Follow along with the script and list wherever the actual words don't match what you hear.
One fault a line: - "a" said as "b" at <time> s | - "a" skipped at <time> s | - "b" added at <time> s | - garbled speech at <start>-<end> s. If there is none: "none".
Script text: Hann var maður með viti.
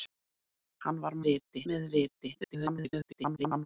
- "maður" said as "viti" at 1.3 s
- garbled speech at 2.4-3.7 s